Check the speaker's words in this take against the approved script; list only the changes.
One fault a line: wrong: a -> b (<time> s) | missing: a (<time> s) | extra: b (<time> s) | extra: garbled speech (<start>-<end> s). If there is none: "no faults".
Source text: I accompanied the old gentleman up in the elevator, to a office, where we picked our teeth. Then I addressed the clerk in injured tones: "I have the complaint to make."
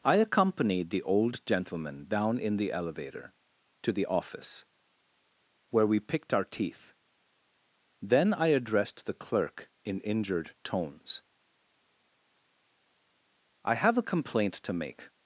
wrong: up -> down (2.1 s)
wrong: a -> the (3.9 s)
wrong: the -> a (13.9 s)